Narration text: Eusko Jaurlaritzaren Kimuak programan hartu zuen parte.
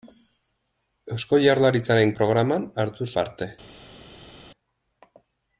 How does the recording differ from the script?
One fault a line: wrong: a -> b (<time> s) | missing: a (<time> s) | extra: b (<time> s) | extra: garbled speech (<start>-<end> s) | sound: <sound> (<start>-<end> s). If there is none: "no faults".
missing: Kimuak (2.1 s)
missing: zuen (3.1 s)